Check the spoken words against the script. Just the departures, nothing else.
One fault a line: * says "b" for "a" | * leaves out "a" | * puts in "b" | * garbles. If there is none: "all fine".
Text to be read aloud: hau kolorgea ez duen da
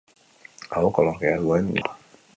all fine